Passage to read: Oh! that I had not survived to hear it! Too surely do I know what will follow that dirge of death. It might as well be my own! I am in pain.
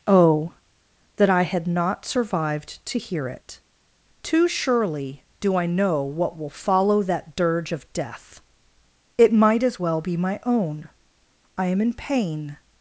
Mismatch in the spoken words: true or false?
false